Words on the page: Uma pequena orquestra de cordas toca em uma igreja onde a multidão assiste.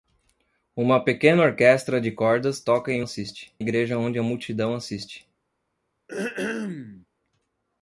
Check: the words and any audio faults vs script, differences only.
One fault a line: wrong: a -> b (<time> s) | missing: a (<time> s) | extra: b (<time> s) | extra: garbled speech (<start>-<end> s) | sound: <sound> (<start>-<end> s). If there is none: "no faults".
wrong: uma -> assiste (3.0 s)
sound: throat clearing (6.1-7.1 s)